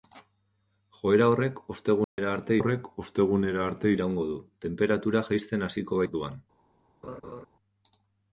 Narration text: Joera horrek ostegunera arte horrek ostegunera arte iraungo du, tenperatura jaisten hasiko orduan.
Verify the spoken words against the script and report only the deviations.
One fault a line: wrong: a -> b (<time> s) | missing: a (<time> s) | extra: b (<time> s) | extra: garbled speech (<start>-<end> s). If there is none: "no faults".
no faults